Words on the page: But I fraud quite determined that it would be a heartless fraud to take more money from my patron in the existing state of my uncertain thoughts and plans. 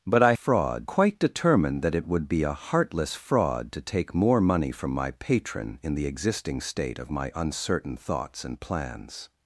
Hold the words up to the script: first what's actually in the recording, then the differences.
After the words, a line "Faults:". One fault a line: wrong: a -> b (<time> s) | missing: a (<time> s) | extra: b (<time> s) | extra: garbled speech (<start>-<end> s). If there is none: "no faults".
But I fraud quite determined that it would be a heartless fraud to take more money from my patron in the existing state of my uncertain thoughts and plans.
Faults:
no faults